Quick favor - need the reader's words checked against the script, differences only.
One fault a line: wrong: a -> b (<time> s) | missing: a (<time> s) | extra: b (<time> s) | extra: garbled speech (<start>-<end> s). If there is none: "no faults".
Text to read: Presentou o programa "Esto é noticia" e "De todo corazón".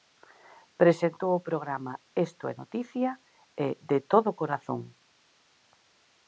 no faults